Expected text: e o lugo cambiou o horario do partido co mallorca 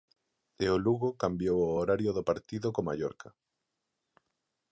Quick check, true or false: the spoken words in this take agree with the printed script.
true